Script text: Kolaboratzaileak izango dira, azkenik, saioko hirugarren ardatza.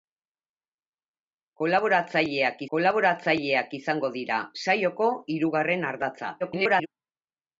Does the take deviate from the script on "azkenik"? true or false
true